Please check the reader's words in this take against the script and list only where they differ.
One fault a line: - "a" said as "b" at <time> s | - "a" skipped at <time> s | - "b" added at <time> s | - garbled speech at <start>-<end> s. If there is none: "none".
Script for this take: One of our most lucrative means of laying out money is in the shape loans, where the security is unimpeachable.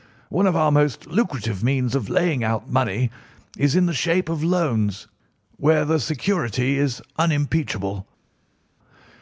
- "of" added at 4.3 s